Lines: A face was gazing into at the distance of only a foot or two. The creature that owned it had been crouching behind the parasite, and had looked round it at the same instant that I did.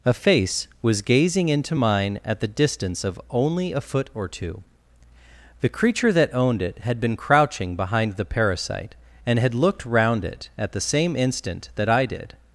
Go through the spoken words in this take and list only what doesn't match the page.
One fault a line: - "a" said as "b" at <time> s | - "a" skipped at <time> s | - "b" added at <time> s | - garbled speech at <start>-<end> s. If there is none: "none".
- "mine" added at 1.7 s